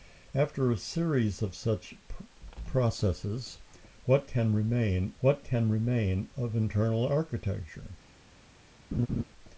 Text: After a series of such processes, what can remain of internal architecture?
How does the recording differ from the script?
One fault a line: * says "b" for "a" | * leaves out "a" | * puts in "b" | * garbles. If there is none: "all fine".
* puts in "what can remain"